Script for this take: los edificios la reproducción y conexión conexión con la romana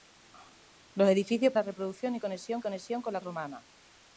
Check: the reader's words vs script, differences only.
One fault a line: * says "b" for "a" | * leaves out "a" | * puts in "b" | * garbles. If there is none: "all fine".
all fine